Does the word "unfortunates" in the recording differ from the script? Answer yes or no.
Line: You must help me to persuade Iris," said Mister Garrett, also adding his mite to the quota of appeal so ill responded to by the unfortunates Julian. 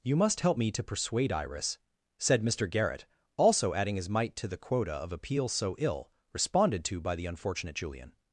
yes